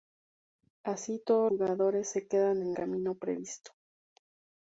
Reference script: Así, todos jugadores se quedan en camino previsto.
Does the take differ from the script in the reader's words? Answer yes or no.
no